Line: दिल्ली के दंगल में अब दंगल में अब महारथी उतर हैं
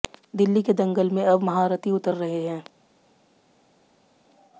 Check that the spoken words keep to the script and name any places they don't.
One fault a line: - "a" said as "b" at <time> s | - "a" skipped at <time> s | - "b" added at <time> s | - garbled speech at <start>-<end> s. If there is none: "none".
- "दंगल में अब" skipped at 1.4 s
- "रहे" added at 2.1 s